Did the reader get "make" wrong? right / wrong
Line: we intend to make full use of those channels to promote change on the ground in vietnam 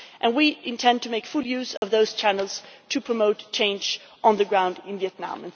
right